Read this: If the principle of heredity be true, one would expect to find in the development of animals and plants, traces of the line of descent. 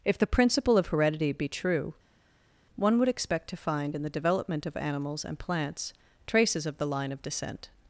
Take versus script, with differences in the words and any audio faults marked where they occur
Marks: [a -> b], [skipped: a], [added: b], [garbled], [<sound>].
If the principle of heredity be true, one would expect to find in the development of animals and plants, traces of the line of descent.